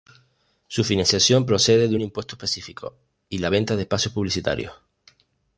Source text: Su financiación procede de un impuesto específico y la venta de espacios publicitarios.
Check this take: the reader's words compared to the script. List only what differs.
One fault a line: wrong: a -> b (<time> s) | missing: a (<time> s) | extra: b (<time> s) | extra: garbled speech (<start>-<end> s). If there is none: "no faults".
no faults